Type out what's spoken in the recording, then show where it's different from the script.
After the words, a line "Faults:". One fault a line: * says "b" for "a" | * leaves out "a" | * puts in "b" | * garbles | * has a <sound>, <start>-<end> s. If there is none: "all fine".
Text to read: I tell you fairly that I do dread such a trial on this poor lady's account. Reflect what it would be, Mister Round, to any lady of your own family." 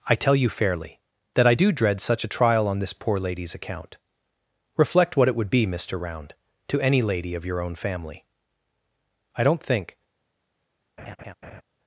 I tell you fairly that I do dread such a trial on this poor lady's account. Reflect what it would be, Mister Round, to any lady of your own family." "I don't think
Faults:
* puts in "I don't think"
* has a laugh, 11.0-11.6 s